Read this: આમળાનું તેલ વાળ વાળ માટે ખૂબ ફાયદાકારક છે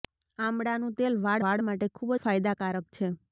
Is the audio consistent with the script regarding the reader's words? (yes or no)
yes